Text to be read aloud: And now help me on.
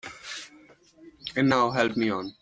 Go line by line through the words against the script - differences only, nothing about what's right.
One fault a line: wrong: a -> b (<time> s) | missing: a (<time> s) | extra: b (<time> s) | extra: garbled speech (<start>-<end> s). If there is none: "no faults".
no faults